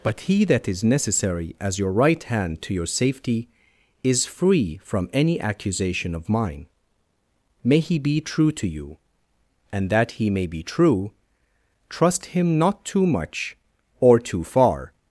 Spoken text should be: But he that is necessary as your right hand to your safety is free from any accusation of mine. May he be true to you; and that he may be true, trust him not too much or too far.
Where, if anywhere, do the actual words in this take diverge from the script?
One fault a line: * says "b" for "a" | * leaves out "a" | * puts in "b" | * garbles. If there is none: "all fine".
all fine